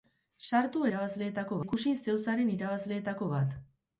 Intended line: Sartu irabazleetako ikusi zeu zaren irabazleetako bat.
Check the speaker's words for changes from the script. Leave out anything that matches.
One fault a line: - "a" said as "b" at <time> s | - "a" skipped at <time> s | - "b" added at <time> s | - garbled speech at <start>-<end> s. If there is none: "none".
none